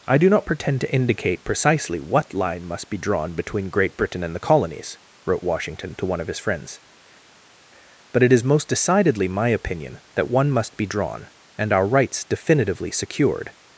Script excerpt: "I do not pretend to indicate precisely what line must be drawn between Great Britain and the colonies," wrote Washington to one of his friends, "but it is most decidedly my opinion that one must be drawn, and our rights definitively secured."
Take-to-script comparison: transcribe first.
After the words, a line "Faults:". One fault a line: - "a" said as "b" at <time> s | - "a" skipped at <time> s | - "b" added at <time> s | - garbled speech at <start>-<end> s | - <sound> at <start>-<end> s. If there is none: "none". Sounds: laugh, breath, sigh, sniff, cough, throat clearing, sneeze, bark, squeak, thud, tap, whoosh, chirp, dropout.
"I do not pretend to indicate precisely what line must be drawn between Great Britain and the colonies," wrote Washington to one of his friends, "but it is most decidedly my opinion that one must be drawn, and our rights definitively secured."
Faults:
none